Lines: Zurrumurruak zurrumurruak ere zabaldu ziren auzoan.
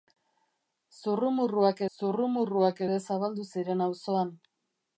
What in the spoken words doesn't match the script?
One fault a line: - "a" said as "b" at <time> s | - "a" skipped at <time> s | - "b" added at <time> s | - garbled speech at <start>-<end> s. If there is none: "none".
none